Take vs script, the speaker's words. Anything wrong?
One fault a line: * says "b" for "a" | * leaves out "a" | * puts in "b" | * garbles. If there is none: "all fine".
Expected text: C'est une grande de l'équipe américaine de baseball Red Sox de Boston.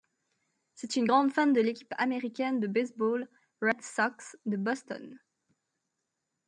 * puts in "fan"